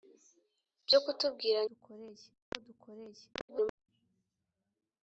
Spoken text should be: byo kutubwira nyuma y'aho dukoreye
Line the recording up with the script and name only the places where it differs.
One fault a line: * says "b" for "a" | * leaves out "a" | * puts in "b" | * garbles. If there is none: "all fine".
* says "dukoreye" for "nyuma"
* garbles